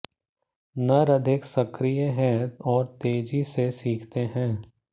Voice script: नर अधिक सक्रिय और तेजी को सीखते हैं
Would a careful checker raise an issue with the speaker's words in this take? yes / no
yes